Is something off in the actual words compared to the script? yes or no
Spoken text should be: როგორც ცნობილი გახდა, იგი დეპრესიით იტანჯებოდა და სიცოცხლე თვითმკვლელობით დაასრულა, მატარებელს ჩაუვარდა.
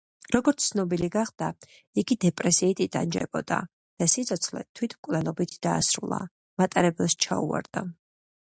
no